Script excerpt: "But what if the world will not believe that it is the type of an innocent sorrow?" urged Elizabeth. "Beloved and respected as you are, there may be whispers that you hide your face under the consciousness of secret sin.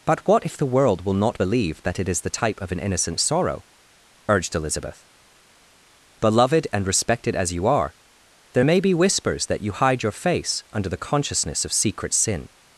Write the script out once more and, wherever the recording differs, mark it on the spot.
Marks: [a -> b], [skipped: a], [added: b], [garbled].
"But what if the world will not believe that it is the type of an innocent sorrow?" urged Elizabeth. "Beloved and respected as you are, there may be whispers that you hide your face under the consciousness of secret sin.